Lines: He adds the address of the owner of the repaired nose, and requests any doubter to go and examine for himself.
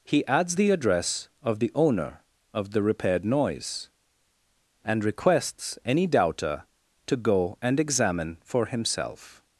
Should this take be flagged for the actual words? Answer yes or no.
yes